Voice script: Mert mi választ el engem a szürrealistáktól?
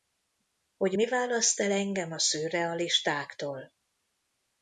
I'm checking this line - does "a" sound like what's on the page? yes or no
yes